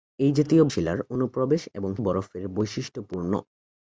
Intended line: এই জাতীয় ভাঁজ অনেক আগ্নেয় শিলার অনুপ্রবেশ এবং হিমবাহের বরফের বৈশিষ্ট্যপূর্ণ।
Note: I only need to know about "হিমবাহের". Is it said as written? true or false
false